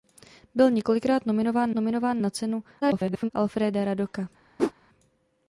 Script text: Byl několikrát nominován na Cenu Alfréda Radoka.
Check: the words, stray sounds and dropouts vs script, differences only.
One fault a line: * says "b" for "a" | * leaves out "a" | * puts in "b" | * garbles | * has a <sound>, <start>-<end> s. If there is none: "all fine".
* puts in "nominován"
* garbles
* has a whoosh, 4.6-4.7 s